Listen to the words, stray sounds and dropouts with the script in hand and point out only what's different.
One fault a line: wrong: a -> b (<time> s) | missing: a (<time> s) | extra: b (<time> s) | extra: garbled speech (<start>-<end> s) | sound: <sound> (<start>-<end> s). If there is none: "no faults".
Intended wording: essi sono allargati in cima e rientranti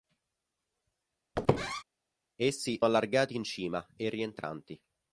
sound: squeak (1.4-1.8 s)
missing: sono (2.8 s)